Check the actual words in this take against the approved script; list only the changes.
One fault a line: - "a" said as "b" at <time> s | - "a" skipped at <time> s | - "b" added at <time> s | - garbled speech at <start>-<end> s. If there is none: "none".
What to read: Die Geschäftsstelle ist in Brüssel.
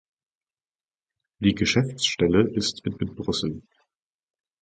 - "in" added at 3.0 s